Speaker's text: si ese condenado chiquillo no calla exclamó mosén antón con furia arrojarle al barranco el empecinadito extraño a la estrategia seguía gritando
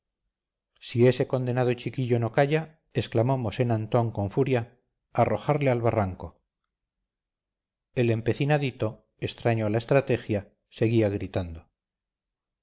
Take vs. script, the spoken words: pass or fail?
pass